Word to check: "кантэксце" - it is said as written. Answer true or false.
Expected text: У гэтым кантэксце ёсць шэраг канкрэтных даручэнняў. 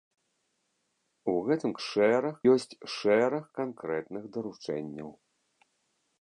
false